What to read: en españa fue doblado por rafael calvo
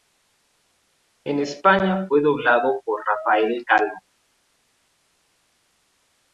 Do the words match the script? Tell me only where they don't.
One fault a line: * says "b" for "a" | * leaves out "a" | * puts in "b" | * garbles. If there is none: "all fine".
all fine